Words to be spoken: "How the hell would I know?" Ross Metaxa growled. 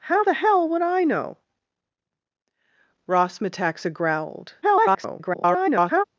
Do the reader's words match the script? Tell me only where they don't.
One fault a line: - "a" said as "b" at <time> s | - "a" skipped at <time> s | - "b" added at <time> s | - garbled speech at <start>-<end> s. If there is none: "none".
- garbled speech at 4.6-6.0 s